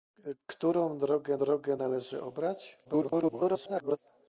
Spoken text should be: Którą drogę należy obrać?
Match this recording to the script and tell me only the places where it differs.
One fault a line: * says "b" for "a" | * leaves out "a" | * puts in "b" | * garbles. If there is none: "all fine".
* puts in "drogę"
* garbles